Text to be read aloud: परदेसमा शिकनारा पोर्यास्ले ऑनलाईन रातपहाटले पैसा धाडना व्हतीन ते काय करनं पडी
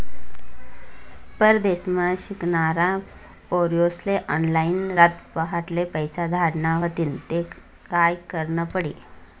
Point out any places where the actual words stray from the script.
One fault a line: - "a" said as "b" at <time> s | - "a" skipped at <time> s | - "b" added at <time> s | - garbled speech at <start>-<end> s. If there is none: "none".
none